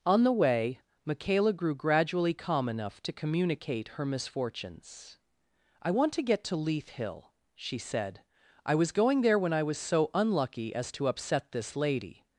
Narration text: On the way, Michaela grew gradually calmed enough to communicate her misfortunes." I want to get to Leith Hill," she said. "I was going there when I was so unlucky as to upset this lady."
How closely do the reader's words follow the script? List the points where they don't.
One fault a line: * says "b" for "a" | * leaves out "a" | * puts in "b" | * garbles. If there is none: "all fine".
* says "calm" for "calmed"